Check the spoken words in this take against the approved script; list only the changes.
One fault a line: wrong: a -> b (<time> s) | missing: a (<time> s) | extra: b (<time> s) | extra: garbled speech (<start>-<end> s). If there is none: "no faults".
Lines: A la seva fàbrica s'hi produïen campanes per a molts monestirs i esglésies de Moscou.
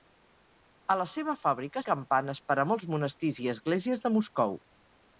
missing: s'hi produïen (1.9 s)